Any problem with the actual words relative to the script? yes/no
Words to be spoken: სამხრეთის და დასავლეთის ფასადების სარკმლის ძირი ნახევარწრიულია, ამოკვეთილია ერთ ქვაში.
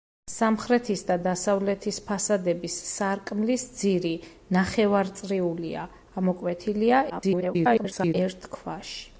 yes